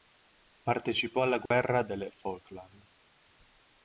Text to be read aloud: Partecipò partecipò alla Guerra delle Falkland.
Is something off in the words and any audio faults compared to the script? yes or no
yes